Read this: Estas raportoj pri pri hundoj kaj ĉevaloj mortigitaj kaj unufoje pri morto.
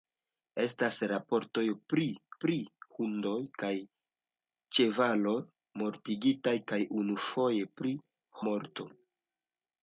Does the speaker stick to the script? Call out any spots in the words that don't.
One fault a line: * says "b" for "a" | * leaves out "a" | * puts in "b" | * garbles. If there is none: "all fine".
all fine